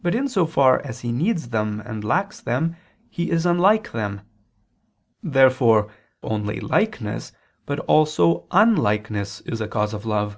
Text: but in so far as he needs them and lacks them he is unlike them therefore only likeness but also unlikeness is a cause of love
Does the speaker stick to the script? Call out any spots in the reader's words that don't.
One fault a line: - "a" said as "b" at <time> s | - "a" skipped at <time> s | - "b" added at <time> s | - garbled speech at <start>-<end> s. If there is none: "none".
none